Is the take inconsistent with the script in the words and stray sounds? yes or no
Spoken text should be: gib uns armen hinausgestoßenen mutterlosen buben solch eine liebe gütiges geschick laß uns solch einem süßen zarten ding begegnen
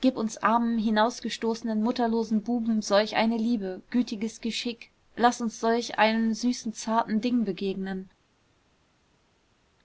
no